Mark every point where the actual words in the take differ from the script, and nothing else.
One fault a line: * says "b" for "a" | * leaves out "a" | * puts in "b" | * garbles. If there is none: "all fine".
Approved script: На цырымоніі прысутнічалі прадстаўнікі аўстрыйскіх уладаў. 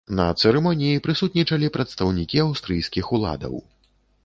all fine